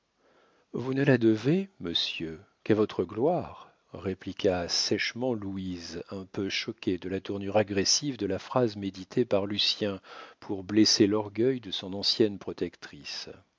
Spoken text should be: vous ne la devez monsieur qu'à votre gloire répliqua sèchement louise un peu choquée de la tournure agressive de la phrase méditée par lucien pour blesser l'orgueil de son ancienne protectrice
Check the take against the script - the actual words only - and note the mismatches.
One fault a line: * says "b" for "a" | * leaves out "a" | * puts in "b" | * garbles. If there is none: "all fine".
all fine